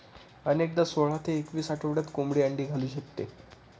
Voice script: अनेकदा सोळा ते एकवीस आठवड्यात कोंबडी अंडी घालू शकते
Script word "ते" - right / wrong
right